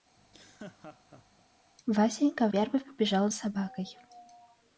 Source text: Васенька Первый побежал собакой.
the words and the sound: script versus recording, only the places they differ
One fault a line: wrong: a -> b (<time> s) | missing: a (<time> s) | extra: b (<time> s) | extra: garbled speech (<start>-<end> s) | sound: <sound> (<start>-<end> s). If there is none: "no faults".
sound: laugh (0.2-1.5 s)